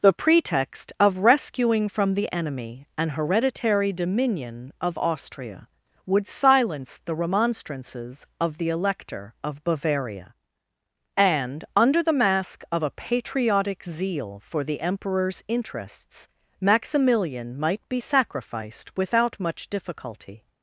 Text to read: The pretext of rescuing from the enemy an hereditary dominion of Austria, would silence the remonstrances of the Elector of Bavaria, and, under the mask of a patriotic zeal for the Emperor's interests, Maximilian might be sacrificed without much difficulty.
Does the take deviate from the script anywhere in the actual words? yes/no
no